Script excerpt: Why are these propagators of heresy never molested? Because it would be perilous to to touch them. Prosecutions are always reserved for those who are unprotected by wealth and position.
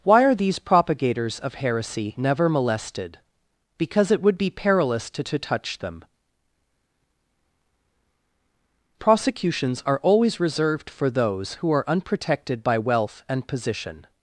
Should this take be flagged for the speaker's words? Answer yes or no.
no